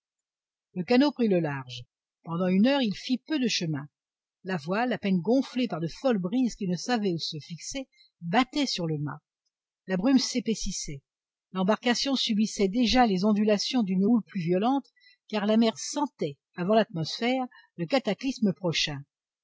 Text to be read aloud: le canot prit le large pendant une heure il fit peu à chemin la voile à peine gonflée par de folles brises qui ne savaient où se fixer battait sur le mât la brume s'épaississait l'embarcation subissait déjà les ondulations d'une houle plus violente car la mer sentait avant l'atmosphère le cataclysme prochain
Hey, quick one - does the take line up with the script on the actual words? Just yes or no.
no